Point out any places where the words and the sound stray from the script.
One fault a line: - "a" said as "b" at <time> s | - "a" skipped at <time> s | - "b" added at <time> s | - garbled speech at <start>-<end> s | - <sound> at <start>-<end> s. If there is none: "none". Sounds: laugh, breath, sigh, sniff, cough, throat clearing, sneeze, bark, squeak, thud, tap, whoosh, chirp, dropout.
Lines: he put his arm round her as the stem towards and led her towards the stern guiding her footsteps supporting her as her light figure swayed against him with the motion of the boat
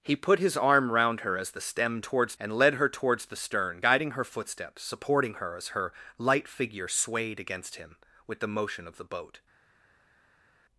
none